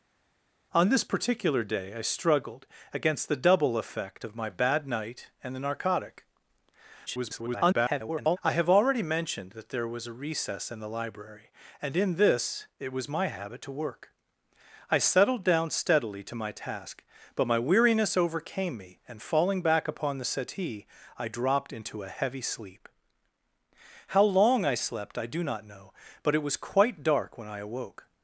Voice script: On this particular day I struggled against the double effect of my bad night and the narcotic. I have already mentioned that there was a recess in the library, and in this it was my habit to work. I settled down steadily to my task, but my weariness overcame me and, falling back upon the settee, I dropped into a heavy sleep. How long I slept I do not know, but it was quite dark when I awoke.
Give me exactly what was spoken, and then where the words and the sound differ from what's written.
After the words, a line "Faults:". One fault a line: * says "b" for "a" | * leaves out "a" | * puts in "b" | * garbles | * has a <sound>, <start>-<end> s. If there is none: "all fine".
On this particular day I struggled against the double effect of my bad night and the narcotic. [garbled] I have already mentioned that there was a recess in the library, and in this it was my habit to work. I settled down steadily to my task, but my weariness overcame me and, falling back upon the settee, I dropped into a heavy sleep. How long I slept I do not know, but it was quite dark when I awoke.
Faults:
* garbles